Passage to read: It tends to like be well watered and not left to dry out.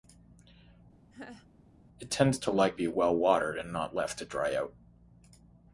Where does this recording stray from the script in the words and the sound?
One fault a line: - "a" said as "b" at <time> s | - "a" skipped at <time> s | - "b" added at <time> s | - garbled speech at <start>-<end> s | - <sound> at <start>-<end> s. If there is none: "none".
- laugh at 1.1-1.5 s